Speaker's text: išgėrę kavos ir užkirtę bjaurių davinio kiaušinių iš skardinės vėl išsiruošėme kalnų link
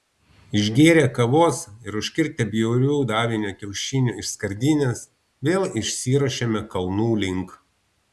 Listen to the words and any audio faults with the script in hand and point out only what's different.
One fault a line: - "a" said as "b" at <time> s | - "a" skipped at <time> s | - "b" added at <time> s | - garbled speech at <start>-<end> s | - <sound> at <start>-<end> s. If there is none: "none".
none